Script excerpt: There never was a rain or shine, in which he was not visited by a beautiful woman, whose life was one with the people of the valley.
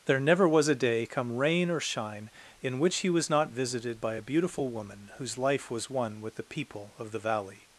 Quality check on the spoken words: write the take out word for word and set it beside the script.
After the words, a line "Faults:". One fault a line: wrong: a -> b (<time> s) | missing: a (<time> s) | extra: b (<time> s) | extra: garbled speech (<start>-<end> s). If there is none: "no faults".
There never was a day, come rain or shine, in which he was not visited by a beautiful woman, whose life was one with the people of the valley.
Faults:
extra: day come (0.8 s)